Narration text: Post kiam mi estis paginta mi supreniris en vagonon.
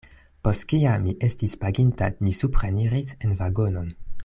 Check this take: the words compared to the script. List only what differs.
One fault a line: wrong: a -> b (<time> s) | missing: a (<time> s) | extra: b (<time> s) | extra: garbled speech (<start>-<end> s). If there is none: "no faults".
no faults